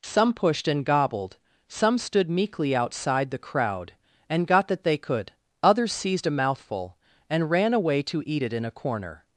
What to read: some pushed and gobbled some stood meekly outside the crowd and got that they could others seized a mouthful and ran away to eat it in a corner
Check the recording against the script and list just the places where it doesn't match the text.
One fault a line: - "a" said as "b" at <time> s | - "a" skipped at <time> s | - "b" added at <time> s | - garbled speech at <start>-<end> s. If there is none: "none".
none